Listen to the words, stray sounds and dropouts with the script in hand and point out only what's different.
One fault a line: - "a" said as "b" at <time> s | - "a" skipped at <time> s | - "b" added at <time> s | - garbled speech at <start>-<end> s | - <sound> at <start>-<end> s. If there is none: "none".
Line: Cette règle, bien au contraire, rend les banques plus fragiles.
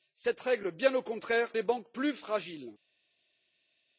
- "rend" skipped at 1.5 s